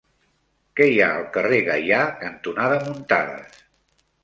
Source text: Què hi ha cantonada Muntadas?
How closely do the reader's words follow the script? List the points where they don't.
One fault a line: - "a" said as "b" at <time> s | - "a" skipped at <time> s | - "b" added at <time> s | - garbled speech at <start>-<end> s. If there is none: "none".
- "al carrer Gaià" added at 1.2 s